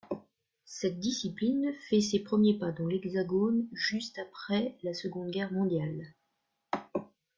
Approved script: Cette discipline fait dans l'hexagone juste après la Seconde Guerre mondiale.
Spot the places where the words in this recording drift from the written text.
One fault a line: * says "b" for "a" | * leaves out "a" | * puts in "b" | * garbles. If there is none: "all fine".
* puts in "ses premiers pas"